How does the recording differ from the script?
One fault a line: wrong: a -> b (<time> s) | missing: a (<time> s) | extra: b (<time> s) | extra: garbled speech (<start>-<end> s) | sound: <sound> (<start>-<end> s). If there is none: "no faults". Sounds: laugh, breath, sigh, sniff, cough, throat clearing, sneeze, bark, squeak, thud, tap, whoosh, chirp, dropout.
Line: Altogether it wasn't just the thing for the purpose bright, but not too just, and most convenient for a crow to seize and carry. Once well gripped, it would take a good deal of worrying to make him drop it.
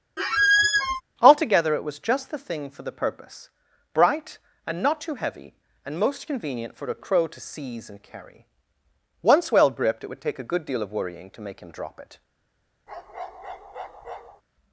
sound: squeak (0.2-1.0 s)
wrong: wasn't -> was (1.8 s)
wrong: but -> and (4.7 s)
wrong: just -> heavy (5.2 s)
sound: bark (12.9-14.4 s)